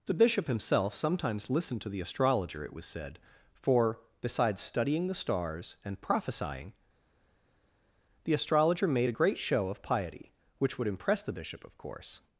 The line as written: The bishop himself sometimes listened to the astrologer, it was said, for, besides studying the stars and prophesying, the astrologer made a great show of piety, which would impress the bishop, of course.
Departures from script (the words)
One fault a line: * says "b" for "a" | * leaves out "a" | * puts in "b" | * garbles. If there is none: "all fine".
all fine